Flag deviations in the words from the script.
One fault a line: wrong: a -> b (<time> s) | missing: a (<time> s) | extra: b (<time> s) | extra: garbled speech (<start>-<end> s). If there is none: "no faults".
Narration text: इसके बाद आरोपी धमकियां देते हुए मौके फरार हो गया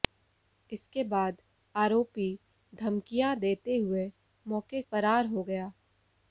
no faults